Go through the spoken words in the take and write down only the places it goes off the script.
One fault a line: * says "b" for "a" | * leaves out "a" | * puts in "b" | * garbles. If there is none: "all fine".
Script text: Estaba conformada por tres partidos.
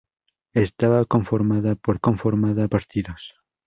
* says "conformada" for "tres"